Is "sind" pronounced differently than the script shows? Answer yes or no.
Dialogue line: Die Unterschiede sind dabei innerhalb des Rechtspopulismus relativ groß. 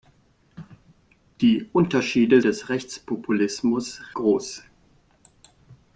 yes